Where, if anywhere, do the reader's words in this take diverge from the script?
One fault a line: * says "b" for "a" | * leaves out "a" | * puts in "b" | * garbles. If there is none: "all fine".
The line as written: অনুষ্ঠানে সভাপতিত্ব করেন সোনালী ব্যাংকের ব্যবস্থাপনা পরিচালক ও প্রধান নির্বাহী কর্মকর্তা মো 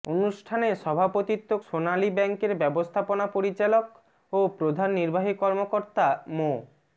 * leaves out "করেন"